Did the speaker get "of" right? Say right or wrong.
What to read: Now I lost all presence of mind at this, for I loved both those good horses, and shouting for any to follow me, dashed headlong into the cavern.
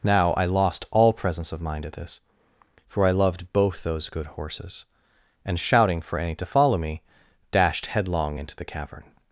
right